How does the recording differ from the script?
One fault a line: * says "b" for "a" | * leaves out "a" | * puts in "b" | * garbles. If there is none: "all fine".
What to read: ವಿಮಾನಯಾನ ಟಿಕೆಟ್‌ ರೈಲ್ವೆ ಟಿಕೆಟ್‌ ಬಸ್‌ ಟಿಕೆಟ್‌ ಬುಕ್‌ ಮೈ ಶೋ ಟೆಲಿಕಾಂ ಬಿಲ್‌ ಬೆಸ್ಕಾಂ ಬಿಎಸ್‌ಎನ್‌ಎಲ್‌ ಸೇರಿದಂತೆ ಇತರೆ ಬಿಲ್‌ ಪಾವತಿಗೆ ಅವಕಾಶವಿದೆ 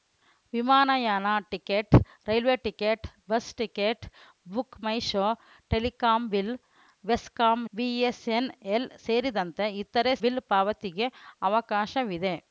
all fine